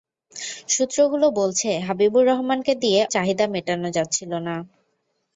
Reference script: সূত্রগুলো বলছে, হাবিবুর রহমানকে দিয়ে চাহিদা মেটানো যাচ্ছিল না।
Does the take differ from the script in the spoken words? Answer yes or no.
no